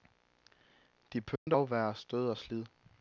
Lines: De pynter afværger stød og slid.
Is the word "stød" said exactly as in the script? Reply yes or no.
yes